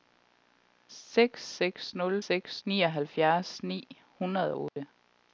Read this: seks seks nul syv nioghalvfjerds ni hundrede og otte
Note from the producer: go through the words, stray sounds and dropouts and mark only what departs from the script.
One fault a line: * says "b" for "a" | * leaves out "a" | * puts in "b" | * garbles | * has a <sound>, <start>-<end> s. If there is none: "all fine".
* says "seks" for "syv"
* has a dropout, 4.7-4.8 s